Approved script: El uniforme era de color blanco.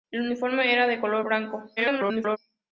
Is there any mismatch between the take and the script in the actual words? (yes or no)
yes